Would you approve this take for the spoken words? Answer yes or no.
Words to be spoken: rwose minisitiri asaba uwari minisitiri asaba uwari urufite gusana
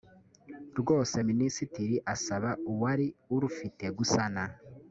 no